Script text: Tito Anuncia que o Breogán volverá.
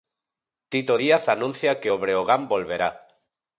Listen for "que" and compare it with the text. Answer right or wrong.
right